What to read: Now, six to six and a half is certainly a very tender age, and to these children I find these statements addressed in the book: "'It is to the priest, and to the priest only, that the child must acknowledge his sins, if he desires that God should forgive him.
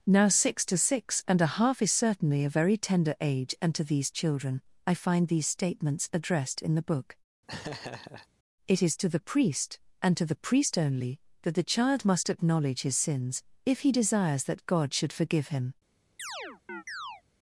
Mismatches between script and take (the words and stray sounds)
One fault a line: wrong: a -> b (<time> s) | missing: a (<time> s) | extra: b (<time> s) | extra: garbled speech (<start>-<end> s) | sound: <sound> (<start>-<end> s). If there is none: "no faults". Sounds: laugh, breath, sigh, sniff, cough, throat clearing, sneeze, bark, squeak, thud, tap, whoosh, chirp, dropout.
sound: laugh (7.5-8.3 s)
sound: chirp (16.2-17.2 s)